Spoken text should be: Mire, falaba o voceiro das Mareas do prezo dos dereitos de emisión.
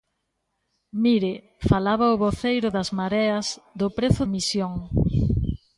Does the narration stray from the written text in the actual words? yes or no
yes